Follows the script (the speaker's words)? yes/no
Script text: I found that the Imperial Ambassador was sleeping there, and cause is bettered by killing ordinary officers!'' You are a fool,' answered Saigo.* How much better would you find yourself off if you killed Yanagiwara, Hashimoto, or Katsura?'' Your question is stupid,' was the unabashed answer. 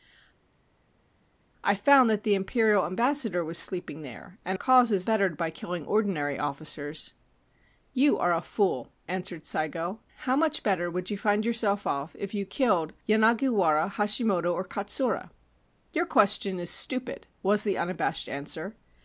yes